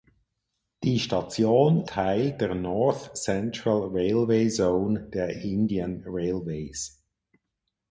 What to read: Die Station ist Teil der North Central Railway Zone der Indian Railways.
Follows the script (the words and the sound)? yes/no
no